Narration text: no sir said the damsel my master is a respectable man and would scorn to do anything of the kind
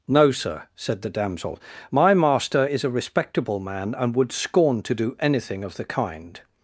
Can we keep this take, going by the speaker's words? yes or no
yes